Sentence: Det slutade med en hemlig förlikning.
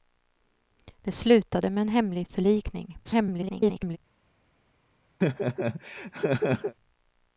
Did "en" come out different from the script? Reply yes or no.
no